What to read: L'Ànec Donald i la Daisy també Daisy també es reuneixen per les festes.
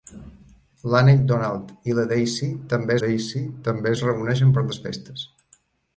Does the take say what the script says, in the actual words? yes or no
yes